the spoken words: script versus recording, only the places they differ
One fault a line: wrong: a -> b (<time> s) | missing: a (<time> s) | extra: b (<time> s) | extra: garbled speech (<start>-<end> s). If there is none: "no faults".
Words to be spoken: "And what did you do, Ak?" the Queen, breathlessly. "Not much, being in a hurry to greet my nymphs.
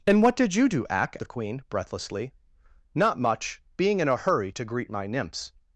no faults